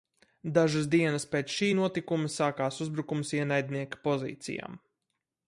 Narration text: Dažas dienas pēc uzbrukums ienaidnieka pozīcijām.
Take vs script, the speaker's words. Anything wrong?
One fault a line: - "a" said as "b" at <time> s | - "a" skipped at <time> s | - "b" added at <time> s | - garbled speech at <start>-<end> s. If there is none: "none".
- "šī notikuma sākās" added at 1.6 s